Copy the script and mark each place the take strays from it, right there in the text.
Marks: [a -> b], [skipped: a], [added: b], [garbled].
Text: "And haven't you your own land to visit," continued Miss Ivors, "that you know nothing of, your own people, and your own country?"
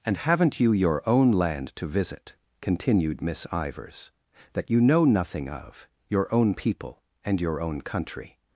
"And haven't you your own land to visit," continued Miss Ivors, "that you know nothing of, your own people, and your own country?"